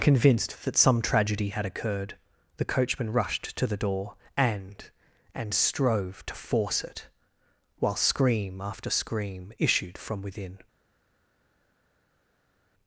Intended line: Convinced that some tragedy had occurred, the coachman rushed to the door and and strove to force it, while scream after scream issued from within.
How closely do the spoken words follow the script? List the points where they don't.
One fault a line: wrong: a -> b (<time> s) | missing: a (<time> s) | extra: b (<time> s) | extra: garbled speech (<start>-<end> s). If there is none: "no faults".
no faults